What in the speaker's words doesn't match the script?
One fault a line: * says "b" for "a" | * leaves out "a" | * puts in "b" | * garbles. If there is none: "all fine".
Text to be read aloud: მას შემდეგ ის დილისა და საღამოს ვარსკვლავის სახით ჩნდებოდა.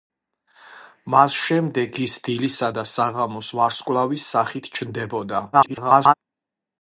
* garbles